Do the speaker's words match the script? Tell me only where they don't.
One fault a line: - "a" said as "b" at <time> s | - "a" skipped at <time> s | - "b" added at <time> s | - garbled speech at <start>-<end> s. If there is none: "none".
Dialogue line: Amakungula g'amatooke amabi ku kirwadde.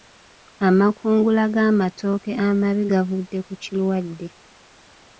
- "gavudde" added at 2.9 s